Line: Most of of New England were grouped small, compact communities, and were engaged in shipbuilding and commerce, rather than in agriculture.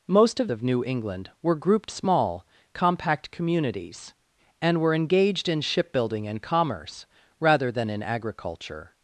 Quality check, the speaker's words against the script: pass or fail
pass